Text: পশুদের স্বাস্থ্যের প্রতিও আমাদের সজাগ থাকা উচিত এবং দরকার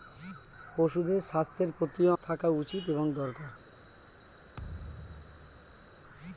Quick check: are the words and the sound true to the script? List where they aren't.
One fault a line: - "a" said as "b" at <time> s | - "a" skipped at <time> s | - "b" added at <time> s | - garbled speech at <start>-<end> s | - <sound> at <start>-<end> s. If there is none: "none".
- "আমাদের সজাগ" skipped at 2.1 s
- thud at 4.6-6.0 s